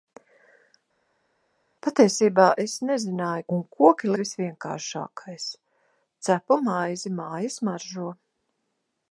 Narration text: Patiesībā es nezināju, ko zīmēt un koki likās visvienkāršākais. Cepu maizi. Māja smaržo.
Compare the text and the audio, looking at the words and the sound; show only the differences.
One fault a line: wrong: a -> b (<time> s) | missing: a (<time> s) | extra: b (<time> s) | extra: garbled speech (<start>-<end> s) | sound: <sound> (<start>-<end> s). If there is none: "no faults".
missing: ko zīmēt (3.4 s)
missing: likās (4.1 s)